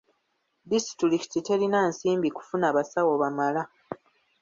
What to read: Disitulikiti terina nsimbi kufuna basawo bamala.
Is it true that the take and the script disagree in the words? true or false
false